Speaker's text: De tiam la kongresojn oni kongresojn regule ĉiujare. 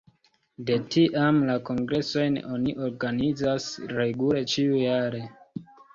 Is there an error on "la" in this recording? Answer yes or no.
no